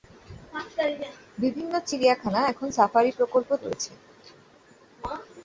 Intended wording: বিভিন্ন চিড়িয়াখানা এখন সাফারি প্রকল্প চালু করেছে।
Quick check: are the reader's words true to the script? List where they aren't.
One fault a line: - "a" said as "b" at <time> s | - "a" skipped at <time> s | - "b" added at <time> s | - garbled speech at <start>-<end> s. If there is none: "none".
- "চালু" skipped at 3.5 s